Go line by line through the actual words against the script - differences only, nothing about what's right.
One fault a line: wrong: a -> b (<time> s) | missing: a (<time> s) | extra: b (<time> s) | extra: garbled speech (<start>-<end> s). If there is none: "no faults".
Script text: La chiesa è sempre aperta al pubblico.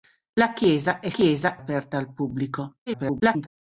wrong: sempre -> chiesa (1.1 s)
extra: garbled speech (2.9-3.5 s)